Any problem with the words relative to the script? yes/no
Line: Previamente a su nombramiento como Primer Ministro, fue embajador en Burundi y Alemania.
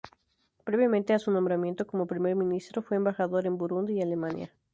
no